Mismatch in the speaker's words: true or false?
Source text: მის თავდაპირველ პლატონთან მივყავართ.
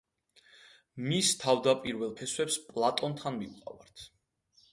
true